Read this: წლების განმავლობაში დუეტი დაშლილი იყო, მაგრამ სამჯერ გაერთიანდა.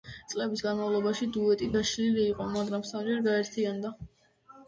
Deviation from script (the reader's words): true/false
false